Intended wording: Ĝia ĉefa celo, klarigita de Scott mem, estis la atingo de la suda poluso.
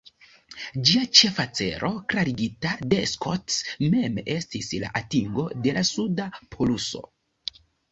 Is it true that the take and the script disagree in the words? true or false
false